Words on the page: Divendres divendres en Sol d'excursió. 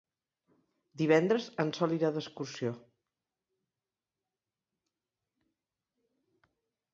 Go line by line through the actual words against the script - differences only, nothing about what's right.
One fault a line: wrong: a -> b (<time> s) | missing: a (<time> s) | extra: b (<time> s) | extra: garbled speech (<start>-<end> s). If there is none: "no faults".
missing: divendres (1.5 s)
extra: irà (2.0 s)